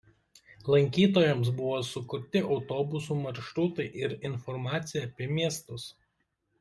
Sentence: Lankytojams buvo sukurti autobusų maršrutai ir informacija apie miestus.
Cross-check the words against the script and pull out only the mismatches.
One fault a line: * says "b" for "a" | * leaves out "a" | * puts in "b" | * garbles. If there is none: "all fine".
all fine